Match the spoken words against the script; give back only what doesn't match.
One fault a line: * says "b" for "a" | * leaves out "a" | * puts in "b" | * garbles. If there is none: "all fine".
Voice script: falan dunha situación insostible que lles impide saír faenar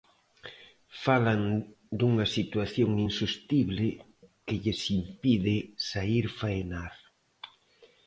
all fine